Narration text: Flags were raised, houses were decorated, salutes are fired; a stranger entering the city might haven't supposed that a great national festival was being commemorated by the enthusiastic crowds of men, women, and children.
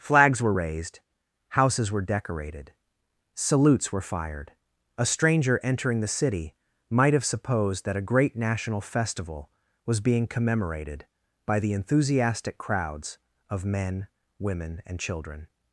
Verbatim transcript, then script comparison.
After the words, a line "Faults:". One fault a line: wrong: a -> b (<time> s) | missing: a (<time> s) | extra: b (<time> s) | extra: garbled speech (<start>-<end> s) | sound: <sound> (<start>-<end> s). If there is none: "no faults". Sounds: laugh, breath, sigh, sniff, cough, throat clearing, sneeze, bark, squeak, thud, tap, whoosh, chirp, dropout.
Flags were raised, houses were decorated, salutes were fired; a stranger entering the city might have supposed that a great national festival was being commemorated by the enthusiastic crowds of men, women, and children.
Faults:
wrong: are -> were (3.9 s)
wrong: haven't -> have (7.1 s)